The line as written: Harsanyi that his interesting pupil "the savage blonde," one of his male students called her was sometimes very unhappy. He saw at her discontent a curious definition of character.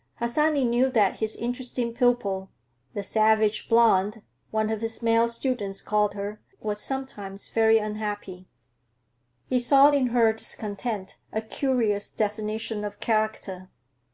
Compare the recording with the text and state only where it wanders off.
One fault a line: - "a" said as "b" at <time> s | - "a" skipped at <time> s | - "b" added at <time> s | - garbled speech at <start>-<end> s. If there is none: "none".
- "knew" added at 0.7 s
- "at" said as "in" at 9.9 s